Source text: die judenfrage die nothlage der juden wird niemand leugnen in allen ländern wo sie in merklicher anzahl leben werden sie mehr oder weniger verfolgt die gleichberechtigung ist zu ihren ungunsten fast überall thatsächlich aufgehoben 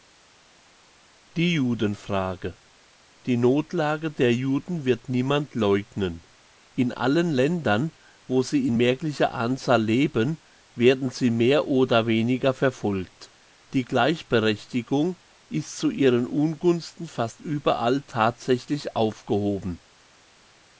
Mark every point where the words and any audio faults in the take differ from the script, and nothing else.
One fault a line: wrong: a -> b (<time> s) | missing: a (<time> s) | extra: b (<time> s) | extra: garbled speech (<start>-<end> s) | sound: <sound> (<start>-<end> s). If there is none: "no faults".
no faults